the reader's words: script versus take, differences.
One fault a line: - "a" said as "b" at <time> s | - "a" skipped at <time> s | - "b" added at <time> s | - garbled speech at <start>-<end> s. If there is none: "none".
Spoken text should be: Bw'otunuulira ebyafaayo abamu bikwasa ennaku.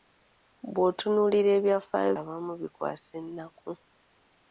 none